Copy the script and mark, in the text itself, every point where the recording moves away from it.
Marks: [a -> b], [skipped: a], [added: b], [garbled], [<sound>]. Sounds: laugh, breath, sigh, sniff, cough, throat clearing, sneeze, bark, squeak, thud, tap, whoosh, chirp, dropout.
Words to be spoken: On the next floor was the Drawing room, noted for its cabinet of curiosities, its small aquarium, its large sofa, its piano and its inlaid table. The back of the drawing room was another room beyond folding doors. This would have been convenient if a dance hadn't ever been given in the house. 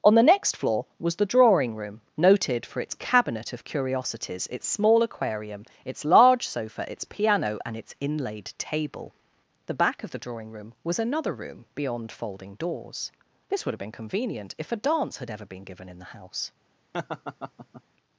On the next floor was the Drawing room, noted for its cabinet of curiosities, its small aquarium, its large sofa, its piano and its inlaid table. The back of the drawing room was another room beyond folding doors. This would have been convenient if a dance [hadn't -> had] ever been given in the house. [laugh]